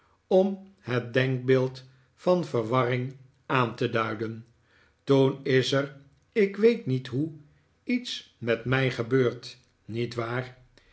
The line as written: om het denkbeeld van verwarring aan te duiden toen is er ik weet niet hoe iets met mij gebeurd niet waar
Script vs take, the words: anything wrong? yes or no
no